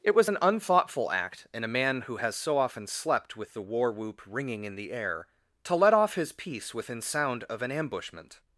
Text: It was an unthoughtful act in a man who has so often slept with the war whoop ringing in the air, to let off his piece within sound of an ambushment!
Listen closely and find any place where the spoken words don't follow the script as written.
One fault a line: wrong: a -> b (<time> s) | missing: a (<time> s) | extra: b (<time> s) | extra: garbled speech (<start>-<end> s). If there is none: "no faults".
no faults